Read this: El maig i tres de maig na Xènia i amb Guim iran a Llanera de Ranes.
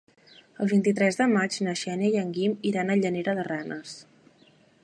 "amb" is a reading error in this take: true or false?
true